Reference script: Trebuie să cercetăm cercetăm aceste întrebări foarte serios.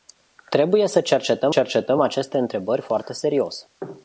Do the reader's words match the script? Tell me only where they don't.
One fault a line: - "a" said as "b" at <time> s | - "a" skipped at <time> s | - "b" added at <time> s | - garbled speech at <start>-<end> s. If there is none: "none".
none